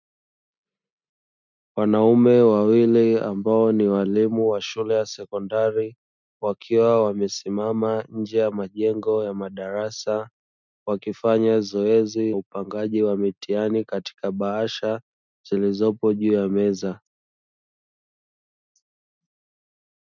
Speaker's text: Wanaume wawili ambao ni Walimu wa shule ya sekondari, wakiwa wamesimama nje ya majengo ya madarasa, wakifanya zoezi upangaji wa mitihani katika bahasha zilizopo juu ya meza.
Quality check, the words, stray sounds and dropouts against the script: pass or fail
pass